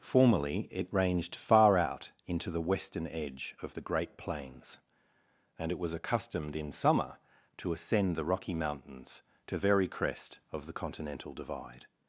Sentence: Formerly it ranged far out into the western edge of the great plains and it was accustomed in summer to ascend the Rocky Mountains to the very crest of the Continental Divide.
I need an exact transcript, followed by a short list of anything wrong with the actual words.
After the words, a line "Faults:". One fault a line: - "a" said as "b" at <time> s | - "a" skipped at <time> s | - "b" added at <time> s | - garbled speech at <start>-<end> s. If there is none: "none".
Formerly it ranged far out into the western edge of the great plains and it was accustomed in summer to ascend the Rocky Mountains to very crest of the Continental Divide.
Faults:
- "the" skipped at 9.6 s